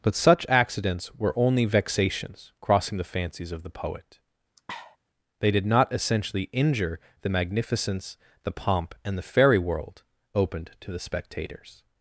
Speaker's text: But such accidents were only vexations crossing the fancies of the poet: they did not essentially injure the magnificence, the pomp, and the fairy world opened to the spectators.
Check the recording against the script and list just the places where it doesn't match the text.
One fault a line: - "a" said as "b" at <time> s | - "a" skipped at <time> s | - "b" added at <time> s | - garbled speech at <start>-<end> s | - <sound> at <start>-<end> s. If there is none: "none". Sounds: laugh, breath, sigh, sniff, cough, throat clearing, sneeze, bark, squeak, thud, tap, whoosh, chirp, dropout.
- sniff at 4.6-5.0 s